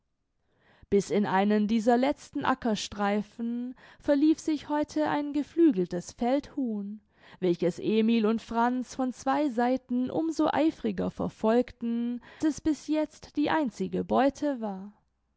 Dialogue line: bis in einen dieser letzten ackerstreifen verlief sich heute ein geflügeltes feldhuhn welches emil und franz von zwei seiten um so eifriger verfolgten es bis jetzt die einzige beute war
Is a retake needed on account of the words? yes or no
no